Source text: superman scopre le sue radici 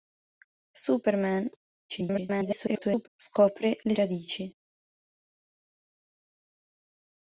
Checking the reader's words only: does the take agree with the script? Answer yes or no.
no